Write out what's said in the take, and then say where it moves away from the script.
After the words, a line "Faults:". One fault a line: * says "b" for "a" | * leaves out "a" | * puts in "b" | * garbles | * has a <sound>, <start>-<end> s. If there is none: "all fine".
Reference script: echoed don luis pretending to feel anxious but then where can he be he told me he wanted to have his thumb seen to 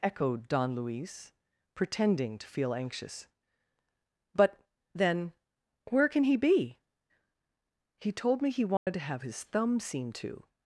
echoed don luis pretending to feel anxious but then where can he be he told me he wanted to have his thumb seen to
Faults:
* has a dropout, 8.8-8.9 s